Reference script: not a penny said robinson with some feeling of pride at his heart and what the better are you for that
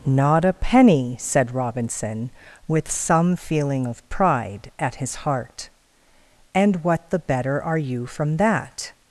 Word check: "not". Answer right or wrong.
right